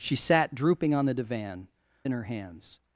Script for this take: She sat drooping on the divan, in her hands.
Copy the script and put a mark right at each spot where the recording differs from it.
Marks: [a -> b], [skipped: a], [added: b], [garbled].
She sat drooping on the divan, in her hands.